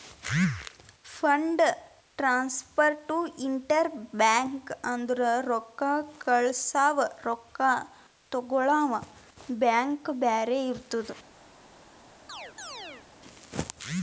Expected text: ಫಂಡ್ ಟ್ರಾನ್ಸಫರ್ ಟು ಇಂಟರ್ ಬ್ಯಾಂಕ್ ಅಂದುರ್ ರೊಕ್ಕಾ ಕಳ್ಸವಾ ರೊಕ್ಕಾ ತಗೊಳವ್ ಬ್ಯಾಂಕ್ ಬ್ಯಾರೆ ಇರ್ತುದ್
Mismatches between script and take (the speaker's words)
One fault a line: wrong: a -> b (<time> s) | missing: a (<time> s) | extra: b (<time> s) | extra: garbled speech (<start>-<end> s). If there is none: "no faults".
no faults